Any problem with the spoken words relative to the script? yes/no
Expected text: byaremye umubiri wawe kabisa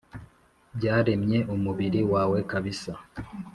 no